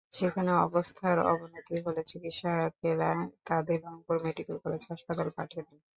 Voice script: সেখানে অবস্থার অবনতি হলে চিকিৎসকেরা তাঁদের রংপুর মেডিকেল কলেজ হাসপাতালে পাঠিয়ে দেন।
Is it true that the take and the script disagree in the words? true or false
false